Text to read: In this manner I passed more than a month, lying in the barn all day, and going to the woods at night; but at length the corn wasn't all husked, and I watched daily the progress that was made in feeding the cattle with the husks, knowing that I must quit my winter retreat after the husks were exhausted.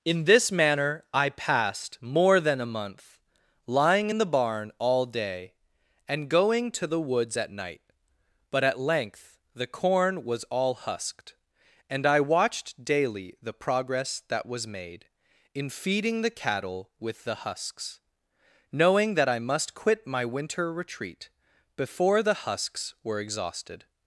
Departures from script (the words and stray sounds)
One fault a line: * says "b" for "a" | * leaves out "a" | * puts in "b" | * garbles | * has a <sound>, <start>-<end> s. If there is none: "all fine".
* says "was" for "wasn't"
* says "before" for "after"